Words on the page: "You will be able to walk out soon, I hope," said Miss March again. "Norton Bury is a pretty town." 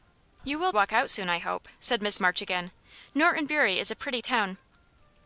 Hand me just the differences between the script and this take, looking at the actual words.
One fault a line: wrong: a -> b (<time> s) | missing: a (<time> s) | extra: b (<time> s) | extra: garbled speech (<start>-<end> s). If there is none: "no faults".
missing: be able to (0.7 s)